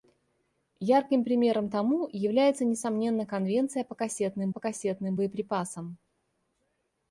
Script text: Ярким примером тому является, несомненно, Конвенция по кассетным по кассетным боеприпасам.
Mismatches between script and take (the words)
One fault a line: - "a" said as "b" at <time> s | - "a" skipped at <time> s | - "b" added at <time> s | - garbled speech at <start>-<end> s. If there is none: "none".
none